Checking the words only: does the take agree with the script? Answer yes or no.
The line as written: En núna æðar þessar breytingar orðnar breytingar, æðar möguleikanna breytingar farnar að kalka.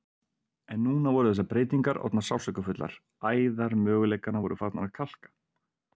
no